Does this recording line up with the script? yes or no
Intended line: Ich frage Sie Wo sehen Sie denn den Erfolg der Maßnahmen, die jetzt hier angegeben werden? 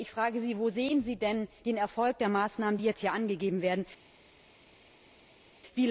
yes